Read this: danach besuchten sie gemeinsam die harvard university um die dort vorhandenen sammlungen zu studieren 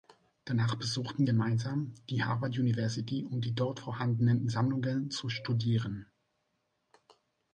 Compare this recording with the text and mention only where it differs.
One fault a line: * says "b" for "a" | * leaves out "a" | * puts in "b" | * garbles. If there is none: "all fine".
* leaves out "sie"